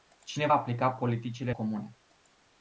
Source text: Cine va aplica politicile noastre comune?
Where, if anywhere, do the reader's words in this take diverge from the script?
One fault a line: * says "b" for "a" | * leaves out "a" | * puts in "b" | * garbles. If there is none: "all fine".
* leaves out "va"
* leaves out "noastre"